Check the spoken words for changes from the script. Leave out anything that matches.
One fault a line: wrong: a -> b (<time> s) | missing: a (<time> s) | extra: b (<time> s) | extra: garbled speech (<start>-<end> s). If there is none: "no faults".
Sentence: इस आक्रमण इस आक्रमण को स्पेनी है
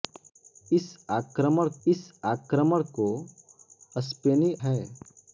no faults